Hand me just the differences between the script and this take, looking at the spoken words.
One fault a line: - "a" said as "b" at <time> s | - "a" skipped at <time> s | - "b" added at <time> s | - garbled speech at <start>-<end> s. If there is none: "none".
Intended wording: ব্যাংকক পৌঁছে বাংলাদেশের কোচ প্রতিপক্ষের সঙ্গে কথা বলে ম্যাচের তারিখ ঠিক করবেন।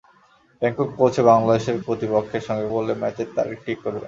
- "কোচ" skipped at 1.8 s
- "কথা" skipped at 2.7 s